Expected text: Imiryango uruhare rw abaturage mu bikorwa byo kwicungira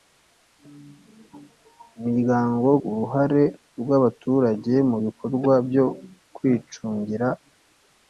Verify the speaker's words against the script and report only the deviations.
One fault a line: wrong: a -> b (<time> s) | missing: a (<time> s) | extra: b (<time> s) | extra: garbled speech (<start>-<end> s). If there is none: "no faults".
no faults